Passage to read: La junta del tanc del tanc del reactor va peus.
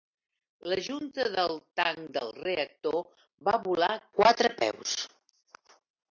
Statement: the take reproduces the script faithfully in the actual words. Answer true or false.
false